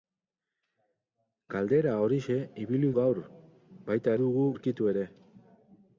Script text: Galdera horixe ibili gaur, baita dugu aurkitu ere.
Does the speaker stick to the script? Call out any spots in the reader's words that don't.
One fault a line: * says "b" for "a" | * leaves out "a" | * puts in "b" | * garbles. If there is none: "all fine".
all fine